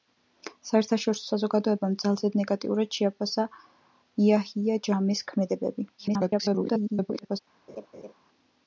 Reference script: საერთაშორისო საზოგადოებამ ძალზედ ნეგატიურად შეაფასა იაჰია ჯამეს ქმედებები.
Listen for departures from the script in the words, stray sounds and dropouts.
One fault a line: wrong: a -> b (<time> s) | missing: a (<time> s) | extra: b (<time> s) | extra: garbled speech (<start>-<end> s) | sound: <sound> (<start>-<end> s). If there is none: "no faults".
extra: garbled speech (6.0-7.4 s)
sound: laugh (7.7-8.1 s)